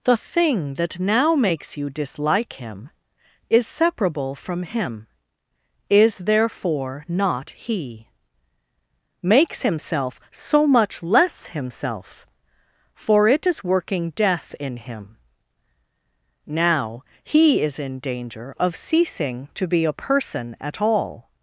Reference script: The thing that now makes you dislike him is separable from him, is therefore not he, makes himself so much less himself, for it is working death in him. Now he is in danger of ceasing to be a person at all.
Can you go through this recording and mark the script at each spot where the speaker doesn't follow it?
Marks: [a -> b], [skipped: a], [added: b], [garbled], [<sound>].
The thing that now makes you dislike him is separable from him, is therefore not he, makes himself so much less himself, for it is working death in him. Now he is in danger of ceasing to be a person at all.